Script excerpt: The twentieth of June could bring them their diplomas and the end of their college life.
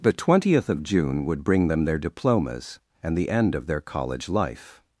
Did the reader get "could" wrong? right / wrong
wrong